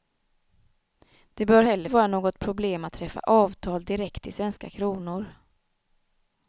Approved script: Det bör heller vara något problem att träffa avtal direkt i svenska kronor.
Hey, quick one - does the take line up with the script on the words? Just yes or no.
yes